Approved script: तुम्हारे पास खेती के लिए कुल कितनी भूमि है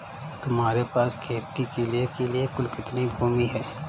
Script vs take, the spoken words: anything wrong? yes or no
yes